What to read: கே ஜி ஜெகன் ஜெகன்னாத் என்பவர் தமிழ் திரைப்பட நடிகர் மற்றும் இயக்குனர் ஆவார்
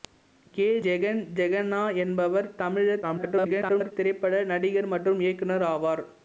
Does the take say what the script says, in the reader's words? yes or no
no